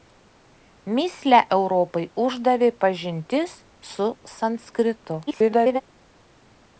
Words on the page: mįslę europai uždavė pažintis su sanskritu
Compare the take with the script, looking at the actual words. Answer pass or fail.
fail